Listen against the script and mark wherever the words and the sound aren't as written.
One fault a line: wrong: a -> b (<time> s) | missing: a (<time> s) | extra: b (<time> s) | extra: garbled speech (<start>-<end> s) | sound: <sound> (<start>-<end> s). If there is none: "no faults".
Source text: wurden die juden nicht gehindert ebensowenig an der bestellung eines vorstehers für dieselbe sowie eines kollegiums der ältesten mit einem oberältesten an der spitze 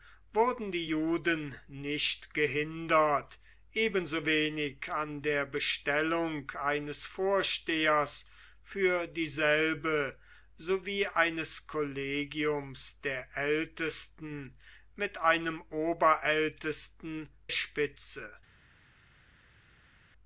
missing: an der (17.3 s)